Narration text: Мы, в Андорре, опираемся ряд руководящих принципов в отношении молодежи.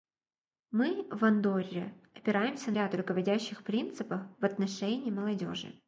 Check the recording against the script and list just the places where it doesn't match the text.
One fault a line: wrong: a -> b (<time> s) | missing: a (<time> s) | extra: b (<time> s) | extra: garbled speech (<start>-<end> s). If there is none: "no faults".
no faults